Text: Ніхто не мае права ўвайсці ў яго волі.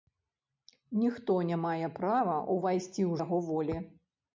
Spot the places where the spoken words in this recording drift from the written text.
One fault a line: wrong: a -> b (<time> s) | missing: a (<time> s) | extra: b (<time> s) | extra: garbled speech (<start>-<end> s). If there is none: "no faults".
no faults